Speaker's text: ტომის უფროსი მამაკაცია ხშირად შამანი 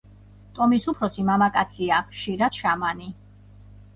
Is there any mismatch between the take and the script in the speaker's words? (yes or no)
no